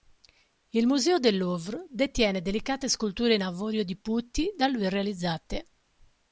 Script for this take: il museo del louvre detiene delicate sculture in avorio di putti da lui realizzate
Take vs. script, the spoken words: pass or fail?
pass